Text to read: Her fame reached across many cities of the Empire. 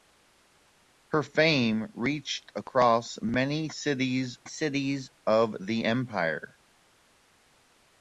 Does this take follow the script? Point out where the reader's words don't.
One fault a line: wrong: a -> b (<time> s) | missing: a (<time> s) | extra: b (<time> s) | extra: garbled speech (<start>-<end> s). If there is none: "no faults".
extra: cities (4.5 s)